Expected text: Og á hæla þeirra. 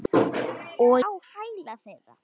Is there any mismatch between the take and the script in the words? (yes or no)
no